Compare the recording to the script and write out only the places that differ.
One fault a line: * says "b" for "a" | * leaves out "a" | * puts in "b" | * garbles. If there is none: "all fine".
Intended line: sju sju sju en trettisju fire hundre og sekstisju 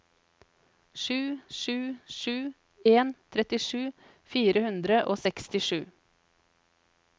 all fine